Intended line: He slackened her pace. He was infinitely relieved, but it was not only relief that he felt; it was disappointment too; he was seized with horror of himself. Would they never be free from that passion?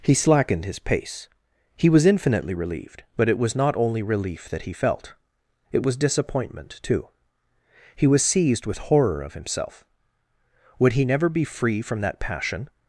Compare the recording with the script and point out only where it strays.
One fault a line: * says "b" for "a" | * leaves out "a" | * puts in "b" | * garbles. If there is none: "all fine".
* says "his" for "her"
* says "he" for "they"